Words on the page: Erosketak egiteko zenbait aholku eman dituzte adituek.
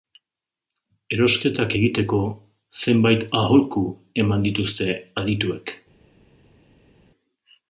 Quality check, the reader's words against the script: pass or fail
pass